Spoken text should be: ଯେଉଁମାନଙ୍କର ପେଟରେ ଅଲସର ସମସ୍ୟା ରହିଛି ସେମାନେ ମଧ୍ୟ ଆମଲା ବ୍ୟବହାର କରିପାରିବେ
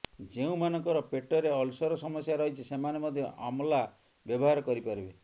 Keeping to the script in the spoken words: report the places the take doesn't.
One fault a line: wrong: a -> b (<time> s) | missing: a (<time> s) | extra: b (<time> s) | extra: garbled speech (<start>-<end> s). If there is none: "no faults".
no faults